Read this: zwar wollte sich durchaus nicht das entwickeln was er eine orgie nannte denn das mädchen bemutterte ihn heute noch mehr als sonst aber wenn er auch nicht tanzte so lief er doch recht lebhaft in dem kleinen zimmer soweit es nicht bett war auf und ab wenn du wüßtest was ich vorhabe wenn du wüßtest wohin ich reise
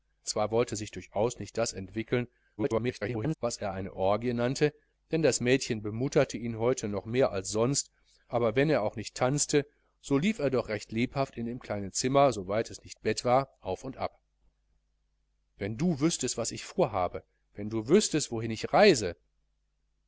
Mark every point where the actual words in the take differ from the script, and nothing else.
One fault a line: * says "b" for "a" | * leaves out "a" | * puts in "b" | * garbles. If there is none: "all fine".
* garbles